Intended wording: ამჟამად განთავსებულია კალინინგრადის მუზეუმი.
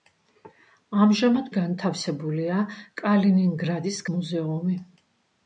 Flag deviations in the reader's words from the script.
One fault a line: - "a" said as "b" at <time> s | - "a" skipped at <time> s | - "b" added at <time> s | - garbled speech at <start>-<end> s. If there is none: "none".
none